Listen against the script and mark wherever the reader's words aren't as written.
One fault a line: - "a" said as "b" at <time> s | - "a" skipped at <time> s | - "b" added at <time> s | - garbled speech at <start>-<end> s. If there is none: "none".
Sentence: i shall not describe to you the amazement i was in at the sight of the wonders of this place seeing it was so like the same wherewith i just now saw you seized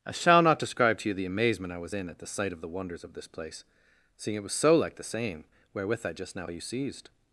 - "saw" skipped at 6.5 s